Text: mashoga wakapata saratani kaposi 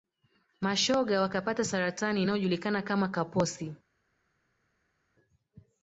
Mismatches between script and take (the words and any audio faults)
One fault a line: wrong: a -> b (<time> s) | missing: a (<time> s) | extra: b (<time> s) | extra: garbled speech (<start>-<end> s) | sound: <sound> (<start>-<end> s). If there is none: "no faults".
extra: inayojulikana kama (2.2 s)